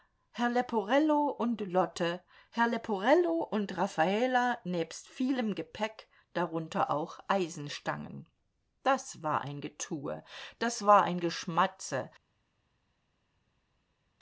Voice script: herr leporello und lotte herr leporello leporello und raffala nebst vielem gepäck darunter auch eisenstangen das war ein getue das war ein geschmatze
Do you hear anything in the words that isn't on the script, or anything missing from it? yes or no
yes